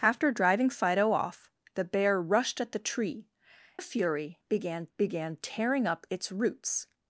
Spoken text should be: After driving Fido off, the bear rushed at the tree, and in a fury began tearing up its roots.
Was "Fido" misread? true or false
false